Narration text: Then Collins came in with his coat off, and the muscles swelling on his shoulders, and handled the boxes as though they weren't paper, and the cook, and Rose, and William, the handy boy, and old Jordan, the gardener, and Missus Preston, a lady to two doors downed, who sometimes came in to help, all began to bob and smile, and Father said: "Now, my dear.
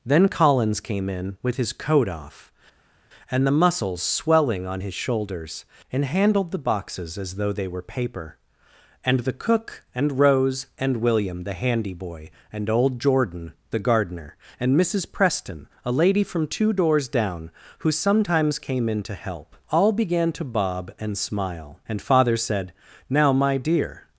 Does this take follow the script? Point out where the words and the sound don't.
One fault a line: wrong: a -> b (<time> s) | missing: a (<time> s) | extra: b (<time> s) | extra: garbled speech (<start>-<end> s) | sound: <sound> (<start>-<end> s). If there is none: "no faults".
wrong: weren't -> were (7.7 s)
wrong: to -> from (16.2 s)
wrong: downed -> down (17.1 s)